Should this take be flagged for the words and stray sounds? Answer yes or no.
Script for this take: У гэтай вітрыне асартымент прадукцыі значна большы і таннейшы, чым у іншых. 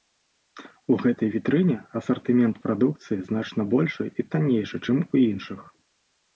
no